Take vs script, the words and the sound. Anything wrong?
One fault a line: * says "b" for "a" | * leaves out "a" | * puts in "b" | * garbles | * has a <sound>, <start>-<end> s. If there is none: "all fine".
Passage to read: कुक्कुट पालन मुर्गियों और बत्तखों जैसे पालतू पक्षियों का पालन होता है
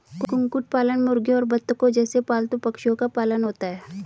all fine